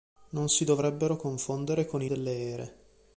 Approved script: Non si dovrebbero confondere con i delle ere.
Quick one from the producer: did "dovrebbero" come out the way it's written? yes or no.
yes